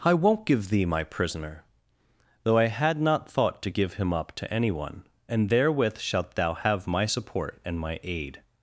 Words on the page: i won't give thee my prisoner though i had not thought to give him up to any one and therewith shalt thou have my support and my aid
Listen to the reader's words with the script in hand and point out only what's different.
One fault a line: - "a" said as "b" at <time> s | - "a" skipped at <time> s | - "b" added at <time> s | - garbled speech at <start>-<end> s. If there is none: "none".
none